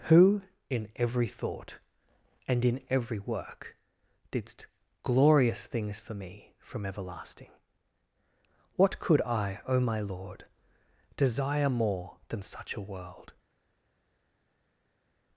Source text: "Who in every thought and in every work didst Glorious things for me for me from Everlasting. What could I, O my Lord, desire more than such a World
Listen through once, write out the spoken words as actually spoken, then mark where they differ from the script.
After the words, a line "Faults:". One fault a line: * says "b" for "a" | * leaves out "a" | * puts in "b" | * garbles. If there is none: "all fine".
"Who in every thought and in every work didst Glorious things for me from Everlasting. What could I, O my Lord, desire more than such a World
Faults:
* leaves out "for me"